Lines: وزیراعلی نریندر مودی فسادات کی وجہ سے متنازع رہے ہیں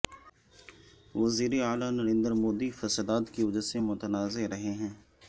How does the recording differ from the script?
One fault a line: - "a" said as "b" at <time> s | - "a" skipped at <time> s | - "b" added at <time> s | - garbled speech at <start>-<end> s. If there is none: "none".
none